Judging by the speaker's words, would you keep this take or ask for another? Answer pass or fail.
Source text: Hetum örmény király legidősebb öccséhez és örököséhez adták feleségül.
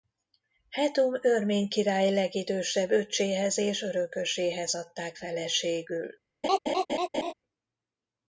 pass